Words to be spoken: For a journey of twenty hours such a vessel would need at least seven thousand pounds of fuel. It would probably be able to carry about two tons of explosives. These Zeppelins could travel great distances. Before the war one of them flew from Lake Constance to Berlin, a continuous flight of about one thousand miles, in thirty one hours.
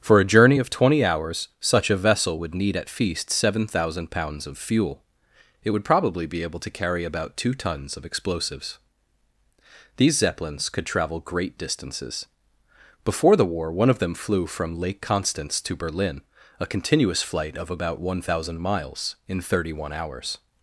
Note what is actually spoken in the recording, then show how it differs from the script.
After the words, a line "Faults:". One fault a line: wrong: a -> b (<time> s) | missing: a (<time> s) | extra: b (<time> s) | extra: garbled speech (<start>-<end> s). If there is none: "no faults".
For a journey of twenty hours such a vessel would need at feast seven thousand pounds of fuel. It would probably be able to carry about two tons of explosives. These Zeppelins could travel great distances. Before the war one of them flew from Lake Constance to Berlin, a continuous flight of about one thousand miles, in thirty one hours.
Faults:
wrong: least -> feast (2.9 s)